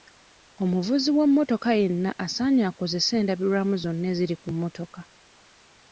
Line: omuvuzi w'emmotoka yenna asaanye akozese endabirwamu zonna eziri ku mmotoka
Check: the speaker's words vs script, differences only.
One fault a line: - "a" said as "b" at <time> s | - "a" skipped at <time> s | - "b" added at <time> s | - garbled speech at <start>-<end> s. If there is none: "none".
none